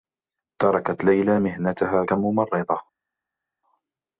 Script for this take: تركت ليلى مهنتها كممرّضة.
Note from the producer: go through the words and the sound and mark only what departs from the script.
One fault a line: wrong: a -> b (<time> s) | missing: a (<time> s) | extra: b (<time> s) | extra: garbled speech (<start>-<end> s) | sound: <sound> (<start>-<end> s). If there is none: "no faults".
no faults